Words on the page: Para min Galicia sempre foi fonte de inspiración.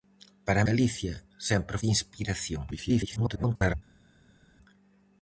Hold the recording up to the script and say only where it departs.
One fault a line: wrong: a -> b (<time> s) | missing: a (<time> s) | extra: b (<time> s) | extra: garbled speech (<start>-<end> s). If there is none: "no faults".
missing: min (0.6 s)
missing: foi fonte (1.8 s)
extra: garbled speech (2.7-3.7 s)